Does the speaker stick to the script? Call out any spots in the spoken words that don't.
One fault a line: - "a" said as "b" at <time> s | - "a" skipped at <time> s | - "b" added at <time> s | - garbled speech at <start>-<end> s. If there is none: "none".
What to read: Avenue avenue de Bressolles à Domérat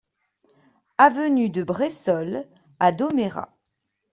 - "avenue" skipped at 1.5 s